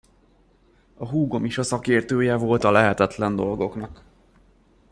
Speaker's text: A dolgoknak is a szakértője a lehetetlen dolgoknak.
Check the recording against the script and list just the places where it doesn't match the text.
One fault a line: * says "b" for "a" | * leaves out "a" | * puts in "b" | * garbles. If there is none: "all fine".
* says "húgom" for "dolgoknak"
* puts in "volt"